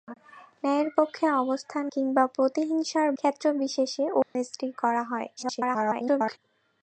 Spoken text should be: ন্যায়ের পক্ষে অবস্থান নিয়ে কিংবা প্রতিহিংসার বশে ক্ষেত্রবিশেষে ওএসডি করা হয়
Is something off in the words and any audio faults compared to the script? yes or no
yes